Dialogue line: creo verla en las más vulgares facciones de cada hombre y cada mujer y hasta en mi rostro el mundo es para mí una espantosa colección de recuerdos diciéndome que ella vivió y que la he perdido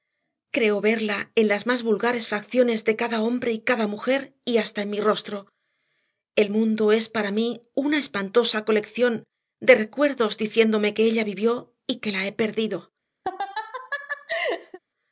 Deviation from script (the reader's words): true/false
false